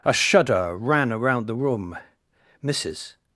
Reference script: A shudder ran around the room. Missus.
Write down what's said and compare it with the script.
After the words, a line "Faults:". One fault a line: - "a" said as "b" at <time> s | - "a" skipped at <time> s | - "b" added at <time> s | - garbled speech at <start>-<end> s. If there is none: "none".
A shudder ran around the room. Missus.
Faults:
none